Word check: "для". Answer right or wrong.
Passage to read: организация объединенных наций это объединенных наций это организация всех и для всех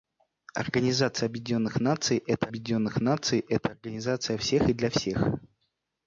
right